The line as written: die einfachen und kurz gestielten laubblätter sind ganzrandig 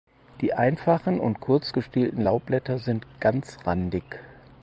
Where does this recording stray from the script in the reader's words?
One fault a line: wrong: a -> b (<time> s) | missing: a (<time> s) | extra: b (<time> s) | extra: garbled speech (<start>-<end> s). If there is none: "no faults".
no faults